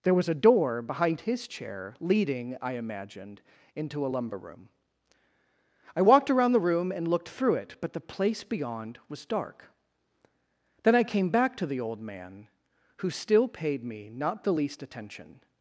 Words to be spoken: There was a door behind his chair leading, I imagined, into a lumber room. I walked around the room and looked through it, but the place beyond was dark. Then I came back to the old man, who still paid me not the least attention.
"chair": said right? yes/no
yes